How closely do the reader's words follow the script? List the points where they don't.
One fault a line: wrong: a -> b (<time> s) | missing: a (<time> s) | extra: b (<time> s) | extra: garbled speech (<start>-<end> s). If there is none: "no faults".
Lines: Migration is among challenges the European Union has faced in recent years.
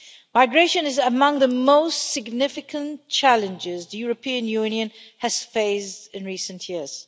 extra: the most significant (1.4 s)